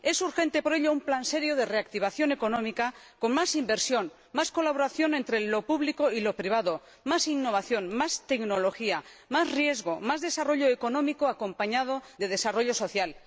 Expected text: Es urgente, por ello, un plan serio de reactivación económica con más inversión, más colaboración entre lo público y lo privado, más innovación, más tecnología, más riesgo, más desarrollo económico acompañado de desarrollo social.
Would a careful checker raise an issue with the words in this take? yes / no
no